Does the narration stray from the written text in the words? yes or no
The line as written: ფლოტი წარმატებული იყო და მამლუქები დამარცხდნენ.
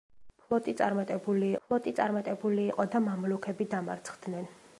yes